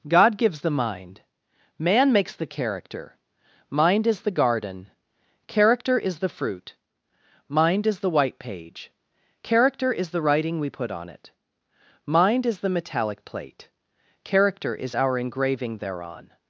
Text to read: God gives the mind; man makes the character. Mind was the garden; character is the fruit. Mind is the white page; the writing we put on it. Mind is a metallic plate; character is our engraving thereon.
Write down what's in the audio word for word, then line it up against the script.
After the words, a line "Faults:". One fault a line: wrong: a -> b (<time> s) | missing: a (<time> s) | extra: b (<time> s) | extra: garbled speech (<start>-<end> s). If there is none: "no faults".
God gives the mind; man makes the character. Mind is the garden; character is the fruit. Mind is the white page; character is the writing we put on it. Mind is the metallic plate; character is our engraving thereon.
Faults:
wrong: was -> is (4.1 s)
extra: character is (9.4 s)
wrong: a -> the (12.6 s)